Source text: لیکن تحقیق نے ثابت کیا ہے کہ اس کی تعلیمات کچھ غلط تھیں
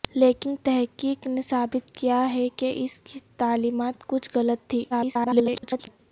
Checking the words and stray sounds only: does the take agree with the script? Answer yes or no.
no